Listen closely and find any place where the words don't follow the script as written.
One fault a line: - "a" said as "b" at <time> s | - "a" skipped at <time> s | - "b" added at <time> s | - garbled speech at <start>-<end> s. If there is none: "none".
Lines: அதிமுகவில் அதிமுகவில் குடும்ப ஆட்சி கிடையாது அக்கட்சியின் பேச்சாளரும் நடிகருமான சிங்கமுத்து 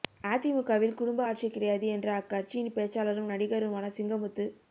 - "அதிமுகவில்" skipped at 0.9 s
- "என்ற" added at 1.9 s